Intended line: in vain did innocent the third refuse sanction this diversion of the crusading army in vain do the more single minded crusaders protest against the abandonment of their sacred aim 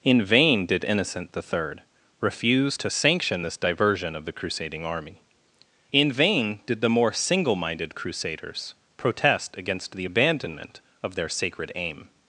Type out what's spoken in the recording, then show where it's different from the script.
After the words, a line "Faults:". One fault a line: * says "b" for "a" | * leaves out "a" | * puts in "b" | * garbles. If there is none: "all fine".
in vain did innocent the third refuse to sanction this diversion of the crusading army in vain did the more single minded crusaders protest against the abandonment of their sacred aim
Faults:
* puts in "to"
* says "did" for "do"